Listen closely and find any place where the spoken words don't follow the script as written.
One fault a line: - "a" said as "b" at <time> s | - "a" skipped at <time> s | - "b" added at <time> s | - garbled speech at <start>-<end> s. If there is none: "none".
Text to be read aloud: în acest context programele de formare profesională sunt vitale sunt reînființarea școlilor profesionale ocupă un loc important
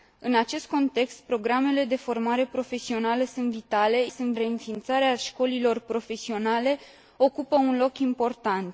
none